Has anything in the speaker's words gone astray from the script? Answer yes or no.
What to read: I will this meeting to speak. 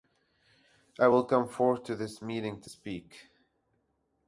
yes